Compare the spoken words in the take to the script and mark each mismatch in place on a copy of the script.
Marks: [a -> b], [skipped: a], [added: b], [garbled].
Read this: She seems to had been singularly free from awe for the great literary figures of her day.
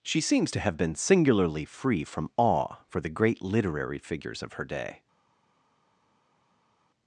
She seems to [had -> have] been singularly free from awe for the great literary figures of her day.